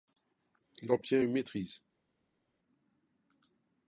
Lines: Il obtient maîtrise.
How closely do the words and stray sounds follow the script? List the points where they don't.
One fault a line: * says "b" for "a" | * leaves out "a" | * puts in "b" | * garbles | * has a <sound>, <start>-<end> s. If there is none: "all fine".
* puts in "une"